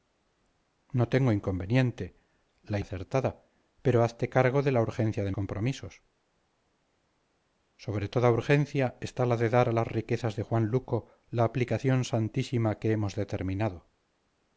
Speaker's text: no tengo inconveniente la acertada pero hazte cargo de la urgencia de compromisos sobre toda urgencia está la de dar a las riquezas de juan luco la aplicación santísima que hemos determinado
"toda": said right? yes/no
yes